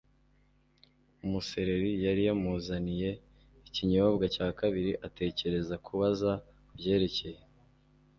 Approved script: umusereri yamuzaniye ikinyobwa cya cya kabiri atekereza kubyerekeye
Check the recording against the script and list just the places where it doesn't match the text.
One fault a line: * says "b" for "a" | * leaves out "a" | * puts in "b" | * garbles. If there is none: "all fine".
* puts in "yari"
* leaves out "cya"
* puts in "kubaza"